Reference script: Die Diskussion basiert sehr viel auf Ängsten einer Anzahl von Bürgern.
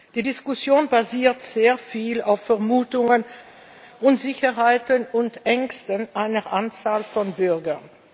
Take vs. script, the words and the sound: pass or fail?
fail